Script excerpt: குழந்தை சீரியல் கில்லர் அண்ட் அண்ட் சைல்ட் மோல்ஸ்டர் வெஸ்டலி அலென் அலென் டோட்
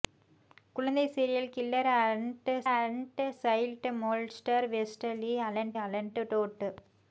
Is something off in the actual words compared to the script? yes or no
no